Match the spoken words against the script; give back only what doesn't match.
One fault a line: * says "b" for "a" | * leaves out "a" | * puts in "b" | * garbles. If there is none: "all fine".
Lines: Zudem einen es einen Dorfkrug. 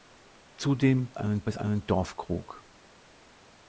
all fine